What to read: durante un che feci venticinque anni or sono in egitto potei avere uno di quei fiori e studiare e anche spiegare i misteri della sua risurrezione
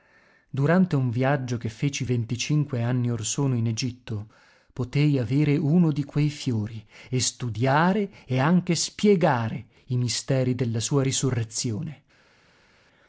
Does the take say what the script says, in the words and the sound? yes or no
no